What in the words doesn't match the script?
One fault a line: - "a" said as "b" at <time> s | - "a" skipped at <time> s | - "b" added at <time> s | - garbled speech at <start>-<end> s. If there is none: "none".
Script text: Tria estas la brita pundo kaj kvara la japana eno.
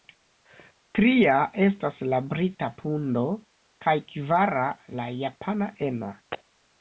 none